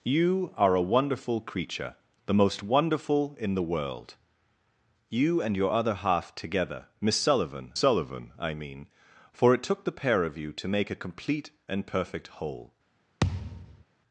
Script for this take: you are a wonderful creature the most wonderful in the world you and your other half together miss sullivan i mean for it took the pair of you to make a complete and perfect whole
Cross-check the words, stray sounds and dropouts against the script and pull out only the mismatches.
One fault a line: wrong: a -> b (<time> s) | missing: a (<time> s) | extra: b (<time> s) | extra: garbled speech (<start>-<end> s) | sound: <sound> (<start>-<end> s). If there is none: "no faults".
extra: sullivan (7.7 s)
sound: thud (13.2-13.8 s)